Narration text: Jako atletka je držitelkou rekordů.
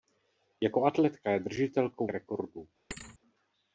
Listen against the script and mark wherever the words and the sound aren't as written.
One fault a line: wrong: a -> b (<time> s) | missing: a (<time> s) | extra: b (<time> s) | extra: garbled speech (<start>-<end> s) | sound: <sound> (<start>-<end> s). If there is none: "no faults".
sound: thud (2.9-3.2 s)